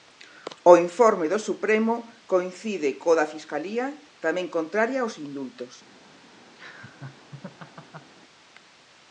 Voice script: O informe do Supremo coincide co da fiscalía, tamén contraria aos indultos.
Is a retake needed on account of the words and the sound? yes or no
yes